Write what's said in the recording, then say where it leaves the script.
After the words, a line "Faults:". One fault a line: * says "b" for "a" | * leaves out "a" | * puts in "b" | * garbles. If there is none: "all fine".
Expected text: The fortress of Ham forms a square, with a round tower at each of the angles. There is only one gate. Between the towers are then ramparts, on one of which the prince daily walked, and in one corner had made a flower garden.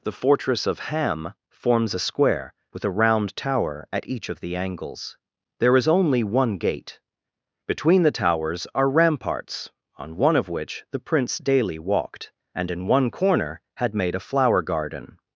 The fortress of Ham forms a square, with a round tower at each of the angles. There is only one gate. Between the towers are ramparts, on one of which the prince daily walked, and in one corner had made a flower garden.
Faults:
* leaves out "then"